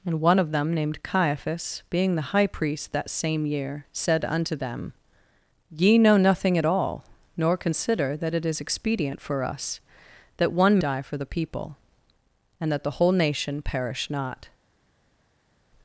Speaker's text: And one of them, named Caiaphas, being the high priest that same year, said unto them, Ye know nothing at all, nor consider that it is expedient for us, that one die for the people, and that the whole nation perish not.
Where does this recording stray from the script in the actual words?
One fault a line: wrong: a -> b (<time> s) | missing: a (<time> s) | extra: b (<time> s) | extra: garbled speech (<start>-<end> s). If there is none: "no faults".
no faults